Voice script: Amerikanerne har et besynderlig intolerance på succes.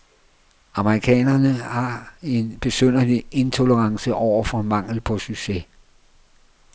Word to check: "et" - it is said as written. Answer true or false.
false